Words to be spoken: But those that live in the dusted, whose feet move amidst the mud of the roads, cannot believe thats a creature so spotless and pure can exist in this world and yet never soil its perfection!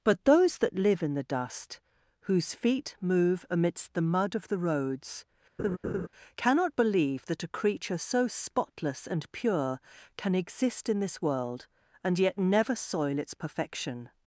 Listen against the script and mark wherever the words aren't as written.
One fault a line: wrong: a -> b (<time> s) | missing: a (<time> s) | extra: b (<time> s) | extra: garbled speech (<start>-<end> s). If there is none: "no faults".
wrong: dusted -> dust (1.2 s)
wrong: thats -> that (7.3 s)